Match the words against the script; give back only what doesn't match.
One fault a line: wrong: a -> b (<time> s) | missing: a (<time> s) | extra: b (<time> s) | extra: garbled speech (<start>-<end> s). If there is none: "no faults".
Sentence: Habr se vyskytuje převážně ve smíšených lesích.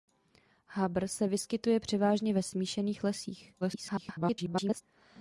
extra: garbled speech (3.6-4.8 s)